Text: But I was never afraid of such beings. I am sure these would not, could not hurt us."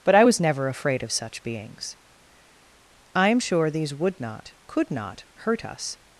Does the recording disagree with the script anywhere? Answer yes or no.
no